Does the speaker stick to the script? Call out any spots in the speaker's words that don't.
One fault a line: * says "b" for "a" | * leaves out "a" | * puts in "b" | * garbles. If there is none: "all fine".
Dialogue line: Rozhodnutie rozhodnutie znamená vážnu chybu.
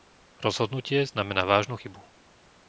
* leaves out "rozhodnutie"